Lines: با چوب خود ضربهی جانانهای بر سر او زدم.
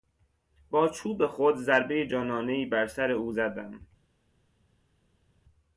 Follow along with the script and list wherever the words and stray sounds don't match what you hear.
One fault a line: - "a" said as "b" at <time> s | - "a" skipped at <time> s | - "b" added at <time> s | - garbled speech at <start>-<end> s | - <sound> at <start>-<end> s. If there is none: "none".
none